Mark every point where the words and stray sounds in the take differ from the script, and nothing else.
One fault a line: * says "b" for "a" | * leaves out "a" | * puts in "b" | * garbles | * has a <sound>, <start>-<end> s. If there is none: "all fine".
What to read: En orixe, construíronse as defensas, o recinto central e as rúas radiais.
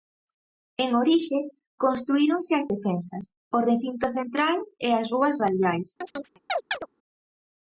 * has a chirp, 6.0-6.9 s